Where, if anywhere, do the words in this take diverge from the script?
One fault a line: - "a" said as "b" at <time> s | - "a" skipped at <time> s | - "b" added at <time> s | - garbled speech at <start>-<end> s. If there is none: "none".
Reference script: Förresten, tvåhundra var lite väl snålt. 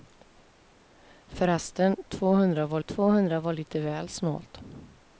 - "tvåhundra var" added at 2.8 s